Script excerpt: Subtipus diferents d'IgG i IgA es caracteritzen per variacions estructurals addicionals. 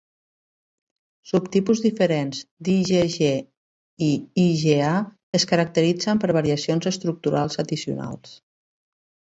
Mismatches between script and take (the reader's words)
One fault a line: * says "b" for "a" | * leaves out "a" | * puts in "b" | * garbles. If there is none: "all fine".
all fine